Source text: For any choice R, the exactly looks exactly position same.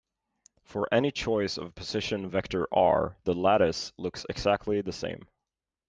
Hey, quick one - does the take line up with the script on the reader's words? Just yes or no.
no